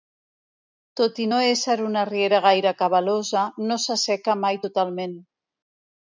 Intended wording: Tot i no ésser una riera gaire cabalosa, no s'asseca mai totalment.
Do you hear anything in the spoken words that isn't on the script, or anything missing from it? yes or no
no